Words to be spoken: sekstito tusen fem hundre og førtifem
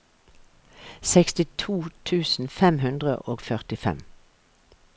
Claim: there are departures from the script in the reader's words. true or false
false